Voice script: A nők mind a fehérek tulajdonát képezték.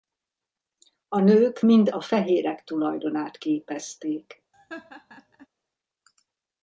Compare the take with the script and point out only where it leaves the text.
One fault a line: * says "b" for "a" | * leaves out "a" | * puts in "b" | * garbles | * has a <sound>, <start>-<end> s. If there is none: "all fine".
* has a laugh, 4.5-5.5 s